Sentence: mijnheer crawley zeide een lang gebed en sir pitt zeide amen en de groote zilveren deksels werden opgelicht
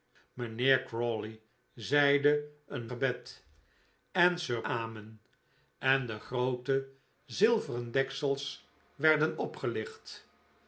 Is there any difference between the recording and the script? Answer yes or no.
yes